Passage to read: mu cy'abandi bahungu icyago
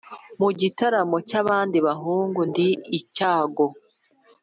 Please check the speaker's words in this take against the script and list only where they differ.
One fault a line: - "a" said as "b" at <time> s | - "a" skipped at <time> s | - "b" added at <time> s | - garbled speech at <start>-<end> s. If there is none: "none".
- "gitaramo" added at 0.6 s
- "ndi" added at 2.5 s